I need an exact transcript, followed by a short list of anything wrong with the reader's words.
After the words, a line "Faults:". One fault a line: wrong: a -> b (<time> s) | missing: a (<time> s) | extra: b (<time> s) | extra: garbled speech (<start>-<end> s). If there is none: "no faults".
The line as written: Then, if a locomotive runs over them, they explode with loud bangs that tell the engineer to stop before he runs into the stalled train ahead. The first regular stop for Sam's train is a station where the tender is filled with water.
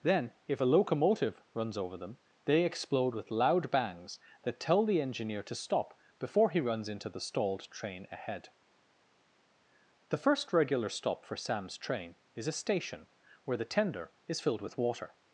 Then, if a locomotive runs over them, they explode with loud bangs that tell the engineer to stop before he runs into the stalled train ahead. The first regular stop for Sam's train is a station where the tender is filled with water.
Faults:
no faults